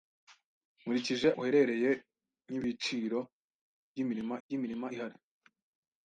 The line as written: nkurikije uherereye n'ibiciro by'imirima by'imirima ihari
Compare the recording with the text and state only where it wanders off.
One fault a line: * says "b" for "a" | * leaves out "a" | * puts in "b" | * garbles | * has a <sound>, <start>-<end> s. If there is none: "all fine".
all fine